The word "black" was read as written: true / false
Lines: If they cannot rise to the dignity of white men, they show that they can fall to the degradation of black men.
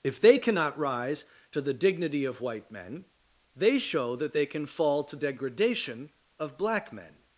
true